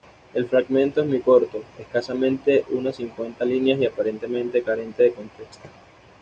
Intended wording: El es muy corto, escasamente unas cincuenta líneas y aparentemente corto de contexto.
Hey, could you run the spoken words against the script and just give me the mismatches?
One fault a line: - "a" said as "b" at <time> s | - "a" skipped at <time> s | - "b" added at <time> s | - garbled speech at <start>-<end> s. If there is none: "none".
- "fragmento" added at 0.5 s
- "corto" said as "carente" at 4.6 s